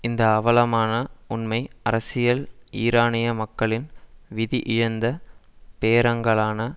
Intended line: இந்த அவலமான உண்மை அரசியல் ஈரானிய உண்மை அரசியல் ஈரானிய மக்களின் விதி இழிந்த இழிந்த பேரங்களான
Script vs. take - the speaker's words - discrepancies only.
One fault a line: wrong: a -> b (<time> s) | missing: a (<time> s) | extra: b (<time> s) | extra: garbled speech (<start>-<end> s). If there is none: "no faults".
missing: உண்மை அரசியல் ஈரானிய (3.3 s)
missing: இழிந்த (5.1 s)